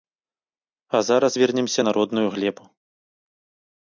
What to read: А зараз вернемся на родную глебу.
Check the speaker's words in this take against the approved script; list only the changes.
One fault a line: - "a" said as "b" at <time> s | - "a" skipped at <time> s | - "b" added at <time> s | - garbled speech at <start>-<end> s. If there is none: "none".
none